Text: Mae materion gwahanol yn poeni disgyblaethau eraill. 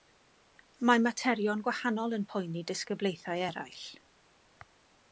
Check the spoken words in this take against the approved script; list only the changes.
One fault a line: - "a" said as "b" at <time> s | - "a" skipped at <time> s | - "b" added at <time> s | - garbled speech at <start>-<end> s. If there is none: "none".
none